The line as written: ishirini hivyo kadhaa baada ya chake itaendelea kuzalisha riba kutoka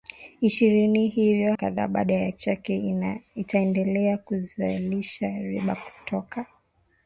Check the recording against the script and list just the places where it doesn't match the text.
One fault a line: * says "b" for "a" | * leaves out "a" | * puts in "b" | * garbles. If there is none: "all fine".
all fine